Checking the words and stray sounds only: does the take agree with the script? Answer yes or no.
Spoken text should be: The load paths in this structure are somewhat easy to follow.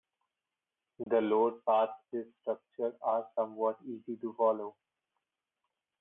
no